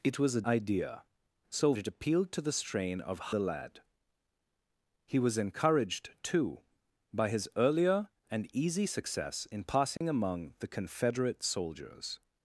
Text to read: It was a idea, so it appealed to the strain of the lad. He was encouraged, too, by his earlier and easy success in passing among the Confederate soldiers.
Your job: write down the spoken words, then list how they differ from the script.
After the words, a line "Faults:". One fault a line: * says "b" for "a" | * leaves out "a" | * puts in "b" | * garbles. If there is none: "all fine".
It was a idea, so it appealed to the strain of the lad. He was encouraged, too, by his earlier and easy success in passing among the Confederate soldiers.
Faults:
all fine